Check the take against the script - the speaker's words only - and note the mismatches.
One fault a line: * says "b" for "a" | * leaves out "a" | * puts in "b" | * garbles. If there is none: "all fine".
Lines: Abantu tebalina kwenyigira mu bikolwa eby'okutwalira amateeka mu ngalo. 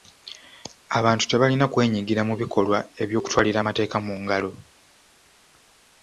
all fine